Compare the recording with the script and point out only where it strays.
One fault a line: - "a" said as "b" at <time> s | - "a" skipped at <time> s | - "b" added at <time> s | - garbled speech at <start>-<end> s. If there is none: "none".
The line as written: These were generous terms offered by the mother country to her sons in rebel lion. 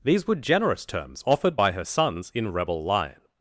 - "the mother country to" skipped at 1.7 s